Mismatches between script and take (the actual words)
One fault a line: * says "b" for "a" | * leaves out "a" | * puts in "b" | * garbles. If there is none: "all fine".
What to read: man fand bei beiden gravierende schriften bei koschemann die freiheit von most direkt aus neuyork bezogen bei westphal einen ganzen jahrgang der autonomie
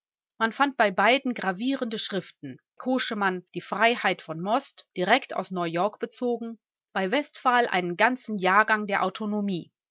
* leaves out "bei"